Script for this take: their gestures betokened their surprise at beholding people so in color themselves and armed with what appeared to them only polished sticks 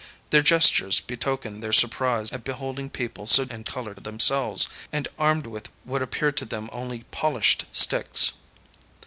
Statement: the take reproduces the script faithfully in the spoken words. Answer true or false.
true